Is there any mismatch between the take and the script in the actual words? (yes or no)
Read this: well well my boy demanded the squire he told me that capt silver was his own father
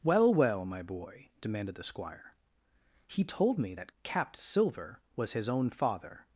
no